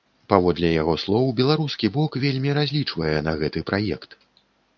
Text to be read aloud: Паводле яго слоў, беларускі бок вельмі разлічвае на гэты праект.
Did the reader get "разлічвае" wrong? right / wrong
right